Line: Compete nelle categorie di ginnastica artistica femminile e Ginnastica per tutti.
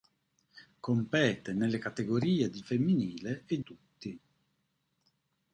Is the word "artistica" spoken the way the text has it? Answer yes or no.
no